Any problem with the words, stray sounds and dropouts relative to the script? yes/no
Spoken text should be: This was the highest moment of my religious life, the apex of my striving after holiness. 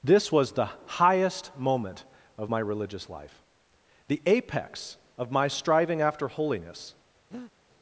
yes